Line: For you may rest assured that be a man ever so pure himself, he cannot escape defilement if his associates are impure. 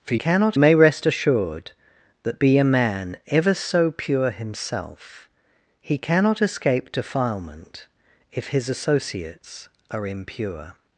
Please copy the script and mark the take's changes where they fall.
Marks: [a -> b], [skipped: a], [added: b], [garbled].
For [you -> cannot] may rest assured that be a man ever so pure himself, he cannot escape defilement if his associates are impure.